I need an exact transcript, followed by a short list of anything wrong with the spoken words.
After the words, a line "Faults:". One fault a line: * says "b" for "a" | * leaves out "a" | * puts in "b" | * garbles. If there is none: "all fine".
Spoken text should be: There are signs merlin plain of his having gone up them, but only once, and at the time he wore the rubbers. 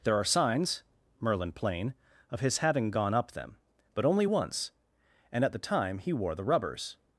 There are signs merlin plain of his having gone up them, but only once, and at the time he wore the rubbers.
Faults:
all fine